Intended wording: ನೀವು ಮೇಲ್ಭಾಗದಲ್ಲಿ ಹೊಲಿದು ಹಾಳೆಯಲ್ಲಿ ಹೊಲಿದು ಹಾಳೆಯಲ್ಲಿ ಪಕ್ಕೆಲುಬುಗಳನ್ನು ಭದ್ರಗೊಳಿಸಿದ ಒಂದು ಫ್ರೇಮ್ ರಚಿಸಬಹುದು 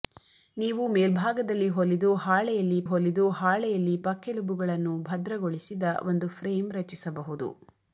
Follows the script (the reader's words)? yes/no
yes